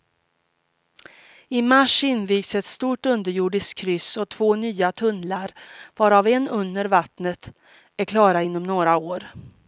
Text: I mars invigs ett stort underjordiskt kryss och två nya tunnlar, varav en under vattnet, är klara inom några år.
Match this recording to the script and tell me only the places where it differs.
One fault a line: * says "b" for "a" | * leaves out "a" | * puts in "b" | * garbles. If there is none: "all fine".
all fine